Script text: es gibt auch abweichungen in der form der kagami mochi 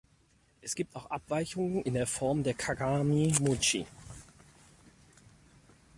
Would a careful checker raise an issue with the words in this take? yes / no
no